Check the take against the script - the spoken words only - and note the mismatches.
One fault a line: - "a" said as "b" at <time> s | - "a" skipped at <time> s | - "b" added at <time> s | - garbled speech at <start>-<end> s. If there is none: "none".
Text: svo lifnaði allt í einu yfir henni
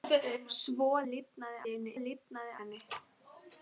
- "allt" skipped at 1.6 s
- "yfir" said as "lifnaði" at 2.0 s